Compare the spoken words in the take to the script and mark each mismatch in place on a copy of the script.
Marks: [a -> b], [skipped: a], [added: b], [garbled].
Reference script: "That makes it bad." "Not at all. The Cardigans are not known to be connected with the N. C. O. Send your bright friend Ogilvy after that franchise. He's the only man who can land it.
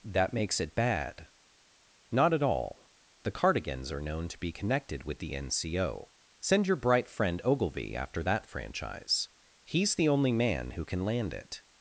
"That makes it bad." "Not at all. The Cardigans are [skipped: not] known to be connected with the N. C. O. Send your bright friend Ogilvy after that franchise. He's the only man who can land it.